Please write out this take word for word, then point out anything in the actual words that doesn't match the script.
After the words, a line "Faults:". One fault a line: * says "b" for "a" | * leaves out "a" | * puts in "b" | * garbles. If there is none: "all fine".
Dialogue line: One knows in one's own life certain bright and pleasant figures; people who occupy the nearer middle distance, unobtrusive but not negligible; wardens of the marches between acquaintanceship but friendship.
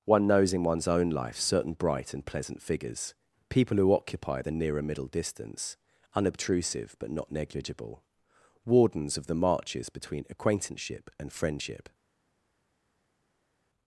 One knows in one's own life certain bright and pleasant figures; people who occupy the nearer middle distance, unobtrusive but not negligible; wardens of the marches between acquaintanceship and friendship.
Faults:
* says "and" for "but"